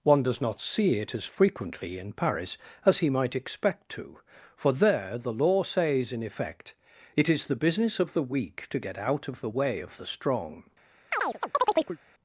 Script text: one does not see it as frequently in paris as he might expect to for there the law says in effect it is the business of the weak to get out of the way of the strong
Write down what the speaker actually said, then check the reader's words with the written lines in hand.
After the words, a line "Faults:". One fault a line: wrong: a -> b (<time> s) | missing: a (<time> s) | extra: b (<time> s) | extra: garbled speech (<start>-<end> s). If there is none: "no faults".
one does not see it as frequently in paris as he might expect to for there the law says in effect it is the business of the weak to get out of the way of the strong
Faults:
no faults